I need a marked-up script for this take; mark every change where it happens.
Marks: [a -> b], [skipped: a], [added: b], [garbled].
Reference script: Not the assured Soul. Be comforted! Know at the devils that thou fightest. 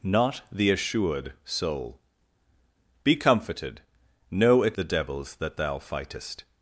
Not the assured Soul. Be comforted! Know at the devils that thou fightest.